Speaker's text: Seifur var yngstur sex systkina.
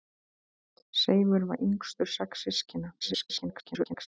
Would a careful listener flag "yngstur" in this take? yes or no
no